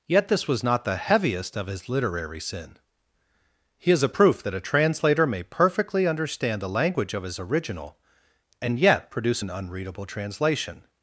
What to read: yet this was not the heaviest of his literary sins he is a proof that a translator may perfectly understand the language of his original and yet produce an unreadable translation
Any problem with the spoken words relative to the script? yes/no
yes